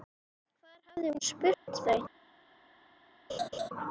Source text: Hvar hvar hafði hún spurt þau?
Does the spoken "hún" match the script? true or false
true